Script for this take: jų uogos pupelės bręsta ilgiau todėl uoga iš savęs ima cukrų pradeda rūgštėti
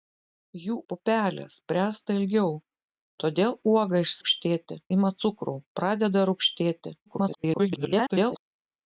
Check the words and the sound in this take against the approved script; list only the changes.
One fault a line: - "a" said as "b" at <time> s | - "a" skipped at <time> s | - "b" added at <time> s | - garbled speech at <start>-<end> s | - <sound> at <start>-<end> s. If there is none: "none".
- "uogos" skipped at 0.8 s
- "savęs" said as "rūgštėti" at 4.2 s
- garbled speech at 7.1-8.4 s